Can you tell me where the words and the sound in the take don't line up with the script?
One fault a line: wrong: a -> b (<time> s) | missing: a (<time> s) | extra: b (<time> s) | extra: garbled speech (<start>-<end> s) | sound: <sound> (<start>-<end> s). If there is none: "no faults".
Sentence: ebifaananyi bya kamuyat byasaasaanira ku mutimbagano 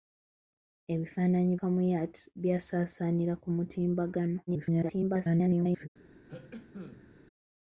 missing: bya (1.5 s)
extra: garbled speech (4.5-5.9 s)
sound: cough (6.3-7.1 s)